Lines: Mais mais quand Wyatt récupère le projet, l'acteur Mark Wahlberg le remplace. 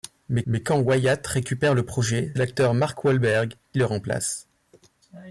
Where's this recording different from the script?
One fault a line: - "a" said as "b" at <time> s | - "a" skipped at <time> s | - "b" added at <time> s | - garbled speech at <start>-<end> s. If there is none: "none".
none